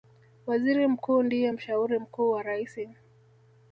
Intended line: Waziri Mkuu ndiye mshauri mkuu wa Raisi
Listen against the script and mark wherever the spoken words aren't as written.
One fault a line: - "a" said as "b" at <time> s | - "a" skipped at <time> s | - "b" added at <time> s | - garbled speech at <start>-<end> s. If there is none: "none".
none